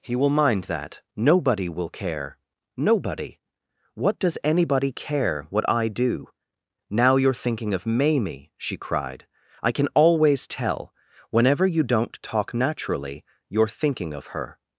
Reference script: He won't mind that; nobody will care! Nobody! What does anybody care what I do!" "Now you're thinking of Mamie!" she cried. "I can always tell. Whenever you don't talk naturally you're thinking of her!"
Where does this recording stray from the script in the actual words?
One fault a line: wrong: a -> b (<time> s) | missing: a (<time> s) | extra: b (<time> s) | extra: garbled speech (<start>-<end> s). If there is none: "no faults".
wrong: won't -> will (0.1 s)